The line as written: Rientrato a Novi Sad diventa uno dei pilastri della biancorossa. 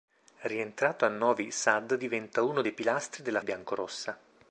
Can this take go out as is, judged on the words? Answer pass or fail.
pass